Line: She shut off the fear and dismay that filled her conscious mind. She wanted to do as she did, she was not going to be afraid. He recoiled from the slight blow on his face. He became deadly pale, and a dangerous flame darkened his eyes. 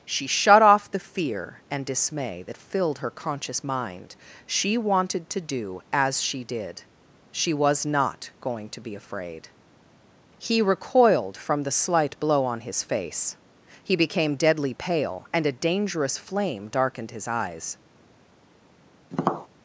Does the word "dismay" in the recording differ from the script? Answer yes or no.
no